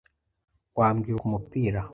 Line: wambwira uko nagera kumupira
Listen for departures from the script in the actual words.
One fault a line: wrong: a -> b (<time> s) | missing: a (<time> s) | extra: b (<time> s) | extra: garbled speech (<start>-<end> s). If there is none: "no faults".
missing: uko nagera (1.2 s)